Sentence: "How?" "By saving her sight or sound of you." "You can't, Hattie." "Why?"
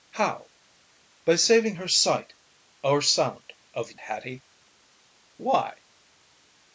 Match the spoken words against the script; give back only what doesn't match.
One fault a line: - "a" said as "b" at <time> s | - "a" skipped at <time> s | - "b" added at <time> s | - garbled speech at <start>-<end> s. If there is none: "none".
- "you You can't" skipped at 3.9 s